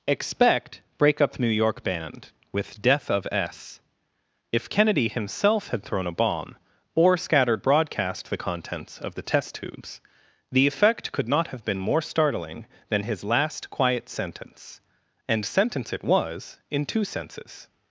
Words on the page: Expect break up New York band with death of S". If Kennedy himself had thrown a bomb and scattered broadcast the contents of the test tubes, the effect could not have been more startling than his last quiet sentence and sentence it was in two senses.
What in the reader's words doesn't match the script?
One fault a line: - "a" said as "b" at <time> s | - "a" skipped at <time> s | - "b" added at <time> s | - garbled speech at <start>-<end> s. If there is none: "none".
- "and" said as "or" at 7.0 s